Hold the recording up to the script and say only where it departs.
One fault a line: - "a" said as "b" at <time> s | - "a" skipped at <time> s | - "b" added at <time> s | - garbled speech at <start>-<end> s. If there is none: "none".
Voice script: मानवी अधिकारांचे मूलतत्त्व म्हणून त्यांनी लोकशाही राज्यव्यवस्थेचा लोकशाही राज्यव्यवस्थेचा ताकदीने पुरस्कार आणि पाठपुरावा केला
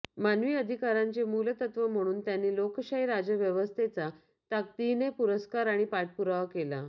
- "लोकशाही राज्यव्यवस्थेचा" skipped at 4.1 s